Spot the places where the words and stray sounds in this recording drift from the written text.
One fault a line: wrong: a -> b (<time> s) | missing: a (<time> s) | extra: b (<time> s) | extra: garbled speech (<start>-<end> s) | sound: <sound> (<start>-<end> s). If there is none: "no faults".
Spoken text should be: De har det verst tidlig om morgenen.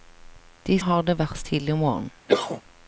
sound: cough (2.3-2.6 s)